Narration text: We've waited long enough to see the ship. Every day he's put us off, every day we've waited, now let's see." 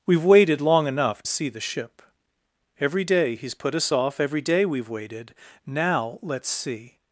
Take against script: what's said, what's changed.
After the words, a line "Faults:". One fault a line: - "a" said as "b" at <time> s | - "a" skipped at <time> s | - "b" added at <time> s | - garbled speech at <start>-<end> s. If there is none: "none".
We've waited long enough see the ship. Every day he's put us off, every day we've waited, now let's see."
Faults:
- "to" skipped at 1.2 s